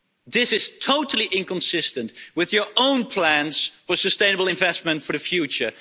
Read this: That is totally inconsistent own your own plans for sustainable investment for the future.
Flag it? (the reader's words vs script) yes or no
yes